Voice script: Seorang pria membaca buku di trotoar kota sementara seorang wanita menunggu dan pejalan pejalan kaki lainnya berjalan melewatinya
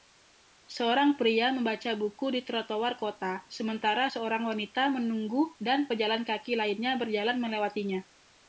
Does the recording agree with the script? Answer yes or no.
no